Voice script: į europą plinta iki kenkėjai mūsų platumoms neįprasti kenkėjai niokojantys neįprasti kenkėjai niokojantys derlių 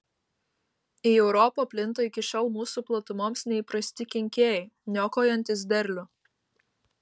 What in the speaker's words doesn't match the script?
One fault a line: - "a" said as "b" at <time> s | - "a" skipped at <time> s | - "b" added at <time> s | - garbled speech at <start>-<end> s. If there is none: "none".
- "kenkėjai" said as "šiol" at 2.3 s
- "neįprasti kenkėjai niokojantys" skipped at 5.7 s